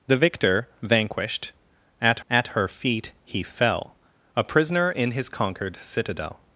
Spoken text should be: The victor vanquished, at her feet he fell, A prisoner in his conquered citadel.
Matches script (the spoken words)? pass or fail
fail